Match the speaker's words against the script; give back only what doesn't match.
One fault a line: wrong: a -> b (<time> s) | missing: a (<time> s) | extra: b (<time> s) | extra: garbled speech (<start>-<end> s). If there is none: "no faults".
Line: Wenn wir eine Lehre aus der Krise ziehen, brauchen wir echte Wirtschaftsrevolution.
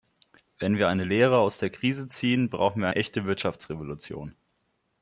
no faults